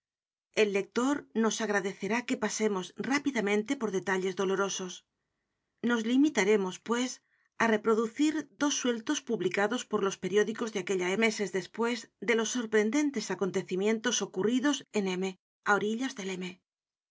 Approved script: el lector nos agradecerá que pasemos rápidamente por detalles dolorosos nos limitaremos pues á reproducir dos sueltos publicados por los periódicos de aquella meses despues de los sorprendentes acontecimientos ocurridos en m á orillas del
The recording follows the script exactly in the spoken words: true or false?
true